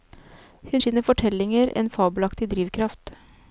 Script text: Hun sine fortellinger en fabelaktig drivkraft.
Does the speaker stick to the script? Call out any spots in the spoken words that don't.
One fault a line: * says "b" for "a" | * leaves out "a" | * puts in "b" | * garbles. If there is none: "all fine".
all fine